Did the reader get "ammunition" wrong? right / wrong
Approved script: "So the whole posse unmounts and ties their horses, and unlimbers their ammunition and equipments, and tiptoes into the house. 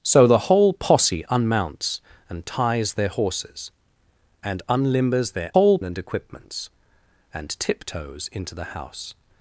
wrong